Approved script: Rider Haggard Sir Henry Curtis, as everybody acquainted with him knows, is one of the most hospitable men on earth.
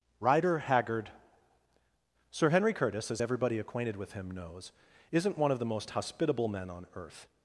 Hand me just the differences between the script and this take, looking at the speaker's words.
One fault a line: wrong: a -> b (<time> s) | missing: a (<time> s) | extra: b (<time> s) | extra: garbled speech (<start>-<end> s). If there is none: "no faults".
wrong: is -> isn't (5.1 s)